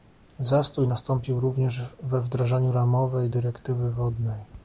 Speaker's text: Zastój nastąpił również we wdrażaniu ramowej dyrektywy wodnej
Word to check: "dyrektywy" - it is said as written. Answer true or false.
true